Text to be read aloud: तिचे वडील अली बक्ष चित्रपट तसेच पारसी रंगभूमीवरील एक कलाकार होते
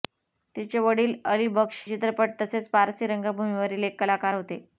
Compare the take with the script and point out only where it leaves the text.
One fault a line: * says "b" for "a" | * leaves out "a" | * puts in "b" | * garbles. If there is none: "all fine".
all fine